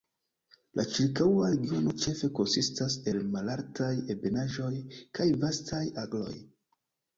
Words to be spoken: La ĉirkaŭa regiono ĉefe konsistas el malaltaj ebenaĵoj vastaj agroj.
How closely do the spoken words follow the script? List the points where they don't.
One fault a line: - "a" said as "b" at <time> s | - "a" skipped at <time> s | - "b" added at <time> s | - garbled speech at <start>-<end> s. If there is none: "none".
- "kaj" added at 5.2 s